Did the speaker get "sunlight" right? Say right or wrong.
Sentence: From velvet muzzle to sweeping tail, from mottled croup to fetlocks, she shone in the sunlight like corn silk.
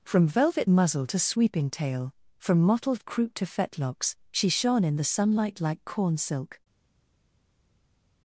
right